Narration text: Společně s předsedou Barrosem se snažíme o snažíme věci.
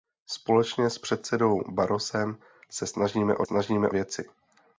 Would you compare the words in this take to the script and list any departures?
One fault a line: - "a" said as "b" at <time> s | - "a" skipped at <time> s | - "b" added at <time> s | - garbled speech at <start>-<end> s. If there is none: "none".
none